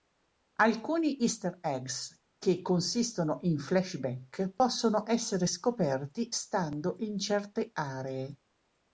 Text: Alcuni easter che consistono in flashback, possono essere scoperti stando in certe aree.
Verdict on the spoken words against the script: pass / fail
fail